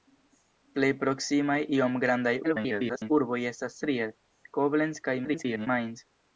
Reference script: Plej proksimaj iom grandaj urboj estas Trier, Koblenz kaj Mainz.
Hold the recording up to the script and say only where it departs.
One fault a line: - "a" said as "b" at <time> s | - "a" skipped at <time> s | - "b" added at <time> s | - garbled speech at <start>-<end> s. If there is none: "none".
- garbled speech at 2.4-3.1 s
- garbled speech at 5.2-5.7 s